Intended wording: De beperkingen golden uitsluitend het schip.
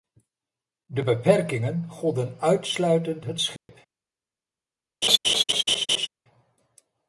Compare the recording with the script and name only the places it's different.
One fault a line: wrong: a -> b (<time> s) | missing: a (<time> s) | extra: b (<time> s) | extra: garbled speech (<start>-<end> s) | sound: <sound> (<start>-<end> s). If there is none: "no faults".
sound: dropout (3.6-3.7 s)
sound: laugh (5.0-6.1 s)